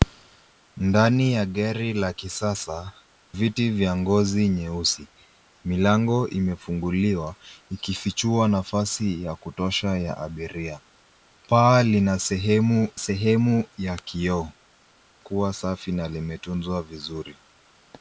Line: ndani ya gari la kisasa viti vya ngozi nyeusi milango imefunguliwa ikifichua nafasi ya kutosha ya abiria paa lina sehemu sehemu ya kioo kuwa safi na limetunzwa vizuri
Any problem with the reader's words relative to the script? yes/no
no